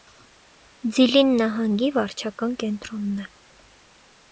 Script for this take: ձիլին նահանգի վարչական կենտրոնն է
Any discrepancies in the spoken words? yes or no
no